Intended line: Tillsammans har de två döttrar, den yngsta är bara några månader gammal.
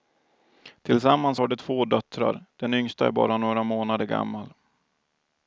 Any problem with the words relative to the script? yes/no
no